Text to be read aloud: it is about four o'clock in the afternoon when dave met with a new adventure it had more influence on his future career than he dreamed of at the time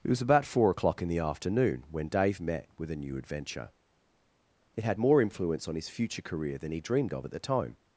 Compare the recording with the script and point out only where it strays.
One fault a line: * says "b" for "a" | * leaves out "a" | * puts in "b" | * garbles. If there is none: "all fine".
* says "was" for "is"